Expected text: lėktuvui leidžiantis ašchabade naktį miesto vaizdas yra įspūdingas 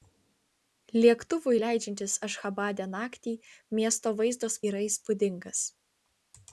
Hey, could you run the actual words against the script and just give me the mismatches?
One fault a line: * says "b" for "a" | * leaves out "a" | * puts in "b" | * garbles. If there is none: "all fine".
all fine